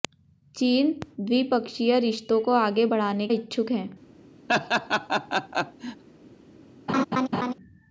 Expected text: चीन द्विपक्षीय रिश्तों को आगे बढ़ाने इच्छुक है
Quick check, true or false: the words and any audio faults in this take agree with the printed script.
false